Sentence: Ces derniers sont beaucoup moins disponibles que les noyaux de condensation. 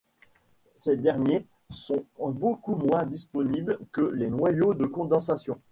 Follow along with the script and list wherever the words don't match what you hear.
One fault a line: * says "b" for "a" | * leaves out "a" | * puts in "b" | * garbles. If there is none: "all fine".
all fine